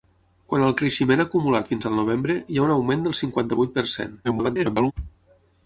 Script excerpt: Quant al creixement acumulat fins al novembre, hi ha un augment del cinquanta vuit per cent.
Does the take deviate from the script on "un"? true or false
false